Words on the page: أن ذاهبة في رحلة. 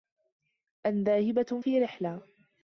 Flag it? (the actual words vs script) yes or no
no